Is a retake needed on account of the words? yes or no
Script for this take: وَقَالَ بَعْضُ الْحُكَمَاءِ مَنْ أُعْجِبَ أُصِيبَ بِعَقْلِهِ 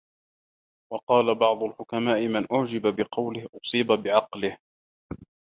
yes